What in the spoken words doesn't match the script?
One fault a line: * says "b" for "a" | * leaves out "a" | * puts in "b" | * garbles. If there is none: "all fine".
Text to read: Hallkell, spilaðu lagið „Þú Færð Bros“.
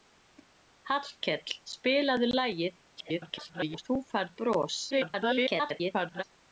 * garbles
* garbles